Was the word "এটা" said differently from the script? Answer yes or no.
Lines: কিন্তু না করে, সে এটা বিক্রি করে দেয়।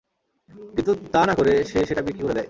yes